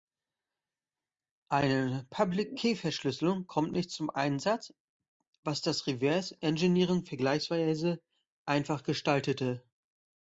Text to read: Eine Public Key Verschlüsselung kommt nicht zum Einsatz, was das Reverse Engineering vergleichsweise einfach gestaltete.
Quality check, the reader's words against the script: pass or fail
pass